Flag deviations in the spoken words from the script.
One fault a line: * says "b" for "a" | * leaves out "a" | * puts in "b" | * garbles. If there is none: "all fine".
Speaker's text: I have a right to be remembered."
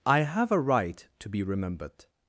all fine